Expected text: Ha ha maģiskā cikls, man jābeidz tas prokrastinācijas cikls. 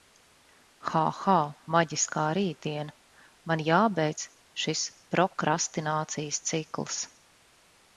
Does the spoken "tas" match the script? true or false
false